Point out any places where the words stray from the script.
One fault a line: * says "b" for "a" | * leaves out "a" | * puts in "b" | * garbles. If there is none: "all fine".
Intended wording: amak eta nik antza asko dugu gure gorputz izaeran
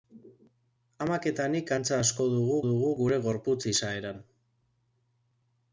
* puts in "dugu"